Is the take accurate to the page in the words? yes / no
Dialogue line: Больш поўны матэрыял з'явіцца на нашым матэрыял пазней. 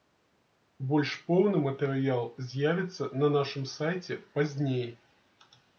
no